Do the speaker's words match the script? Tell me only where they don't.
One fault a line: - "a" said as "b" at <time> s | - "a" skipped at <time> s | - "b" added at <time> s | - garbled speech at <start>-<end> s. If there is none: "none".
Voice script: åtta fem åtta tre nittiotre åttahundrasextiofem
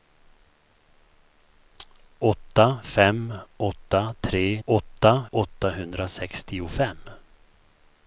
- "nittiotre" said as "åtta" at 4.7 s